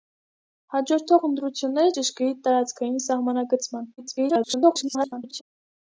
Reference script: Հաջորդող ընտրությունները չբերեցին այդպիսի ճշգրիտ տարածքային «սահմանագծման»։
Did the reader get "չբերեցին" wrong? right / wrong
wrong